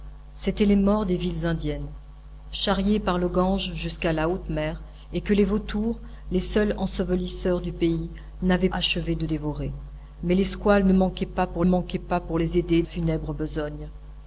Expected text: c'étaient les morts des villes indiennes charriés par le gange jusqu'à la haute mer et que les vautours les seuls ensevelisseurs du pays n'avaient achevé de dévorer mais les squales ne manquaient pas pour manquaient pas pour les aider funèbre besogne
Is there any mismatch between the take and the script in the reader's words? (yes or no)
no